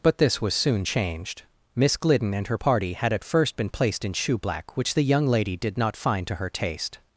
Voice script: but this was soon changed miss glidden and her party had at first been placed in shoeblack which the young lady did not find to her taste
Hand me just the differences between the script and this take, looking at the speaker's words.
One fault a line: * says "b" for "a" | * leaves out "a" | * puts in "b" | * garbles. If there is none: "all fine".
all fine